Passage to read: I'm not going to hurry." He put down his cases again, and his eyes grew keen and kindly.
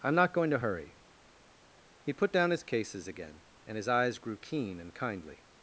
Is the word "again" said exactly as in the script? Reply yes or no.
yes